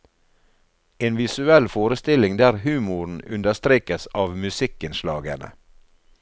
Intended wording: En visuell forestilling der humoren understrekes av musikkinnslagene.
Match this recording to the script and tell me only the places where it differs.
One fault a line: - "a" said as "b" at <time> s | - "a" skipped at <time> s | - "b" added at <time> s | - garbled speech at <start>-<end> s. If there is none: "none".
none